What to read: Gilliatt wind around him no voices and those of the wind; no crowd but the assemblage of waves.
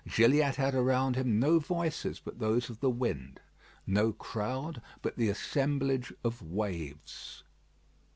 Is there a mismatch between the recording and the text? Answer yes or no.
yes